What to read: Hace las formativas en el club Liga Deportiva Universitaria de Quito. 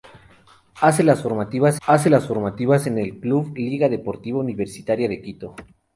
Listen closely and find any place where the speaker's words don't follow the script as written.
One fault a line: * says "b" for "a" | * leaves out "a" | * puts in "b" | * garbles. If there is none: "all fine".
* puts in "hace las formativas"